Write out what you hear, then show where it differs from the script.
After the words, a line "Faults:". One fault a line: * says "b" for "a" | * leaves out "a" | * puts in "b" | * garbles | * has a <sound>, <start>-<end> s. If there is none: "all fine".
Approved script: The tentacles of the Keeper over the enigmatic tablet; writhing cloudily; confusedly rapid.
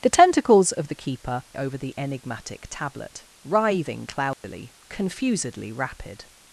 The tentacles of the Keeper over the enigmatic tablet; writhing cloudily; confusedly rapid.
Faults:
* has a dropout, 4.3-4.4 s